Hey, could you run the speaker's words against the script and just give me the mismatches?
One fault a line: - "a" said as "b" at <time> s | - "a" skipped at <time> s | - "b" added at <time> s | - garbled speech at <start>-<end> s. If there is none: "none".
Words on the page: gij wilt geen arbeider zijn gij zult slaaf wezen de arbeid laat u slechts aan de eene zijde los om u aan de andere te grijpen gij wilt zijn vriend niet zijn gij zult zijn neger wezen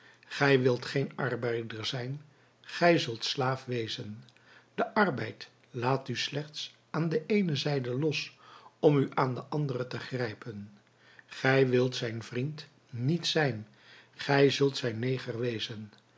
none